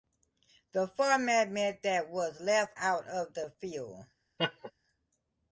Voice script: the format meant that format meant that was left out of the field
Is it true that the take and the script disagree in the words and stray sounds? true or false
true